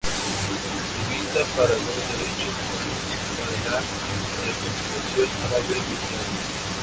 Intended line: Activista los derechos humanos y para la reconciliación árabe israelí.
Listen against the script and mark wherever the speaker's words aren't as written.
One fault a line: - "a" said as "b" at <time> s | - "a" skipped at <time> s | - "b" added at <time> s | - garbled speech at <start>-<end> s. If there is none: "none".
- "para" added at 1.6 s